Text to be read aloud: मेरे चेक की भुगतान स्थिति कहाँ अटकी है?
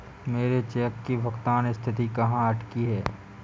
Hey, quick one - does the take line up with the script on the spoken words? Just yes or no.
yes